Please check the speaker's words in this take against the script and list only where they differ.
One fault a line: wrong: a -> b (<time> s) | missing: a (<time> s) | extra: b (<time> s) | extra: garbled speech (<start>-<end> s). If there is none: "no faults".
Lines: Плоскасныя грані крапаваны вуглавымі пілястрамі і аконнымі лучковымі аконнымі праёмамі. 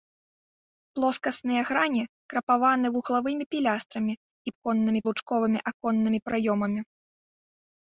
no faults